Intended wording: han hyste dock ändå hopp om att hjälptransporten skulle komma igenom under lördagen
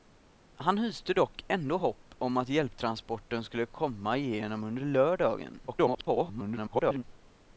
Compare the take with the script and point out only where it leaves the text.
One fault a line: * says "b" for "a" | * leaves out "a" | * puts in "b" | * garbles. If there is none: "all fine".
* garbles